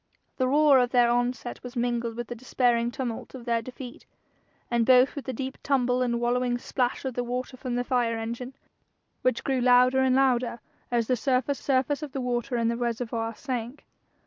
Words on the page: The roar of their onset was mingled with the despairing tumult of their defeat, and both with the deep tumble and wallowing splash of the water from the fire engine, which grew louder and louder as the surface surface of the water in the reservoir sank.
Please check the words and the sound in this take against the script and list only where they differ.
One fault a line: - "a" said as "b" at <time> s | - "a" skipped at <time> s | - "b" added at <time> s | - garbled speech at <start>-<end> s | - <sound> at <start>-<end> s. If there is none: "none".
none